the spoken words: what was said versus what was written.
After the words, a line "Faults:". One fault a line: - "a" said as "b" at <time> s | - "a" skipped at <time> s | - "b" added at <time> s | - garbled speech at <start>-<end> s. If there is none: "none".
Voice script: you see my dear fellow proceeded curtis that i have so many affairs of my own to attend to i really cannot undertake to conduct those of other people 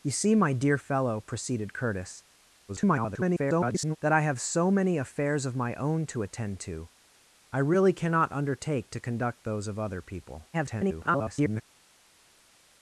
you see my dear fellow proceeded curtis [garbled] that i have so many affairs of my own to attend to i really cannot undertake to conduct those of other people [garbled]
Faults:
- garbled speech at 2.7-4.0 s
- garbled speech at 10.5-11.6 s